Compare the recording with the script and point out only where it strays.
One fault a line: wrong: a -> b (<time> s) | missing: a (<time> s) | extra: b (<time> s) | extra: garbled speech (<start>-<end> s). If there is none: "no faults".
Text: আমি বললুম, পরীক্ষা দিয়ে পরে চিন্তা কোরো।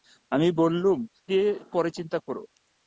missing: পরীক্ষা (1.0 s)